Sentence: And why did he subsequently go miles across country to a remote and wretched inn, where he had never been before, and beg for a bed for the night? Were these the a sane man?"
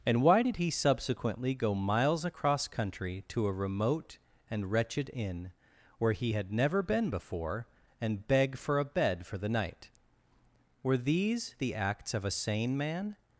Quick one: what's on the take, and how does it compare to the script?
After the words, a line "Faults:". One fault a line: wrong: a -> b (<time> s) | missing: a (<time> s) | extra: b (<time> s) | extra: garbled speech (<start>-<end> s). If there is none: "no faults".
And why did he subsequently go miles across country to a remote and wretched inn, where he had never been before, and beg for a bed for the night? Were these the acts of a sane man?"
Faults:
extra: acts of (11.7 s)